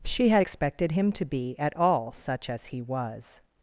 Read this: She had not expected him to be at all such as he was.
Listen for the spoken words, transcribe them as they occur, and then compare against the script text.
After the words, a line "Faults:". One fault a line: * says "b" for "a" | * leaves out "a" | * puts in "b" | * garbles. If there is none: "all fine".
She had expected him to be at all such as he was.
Faults:
* leaves out "not"